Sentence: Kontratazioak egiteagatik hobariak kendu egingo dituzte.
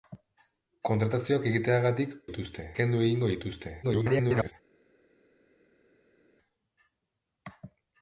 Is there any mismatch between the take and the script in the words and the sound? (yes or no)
yes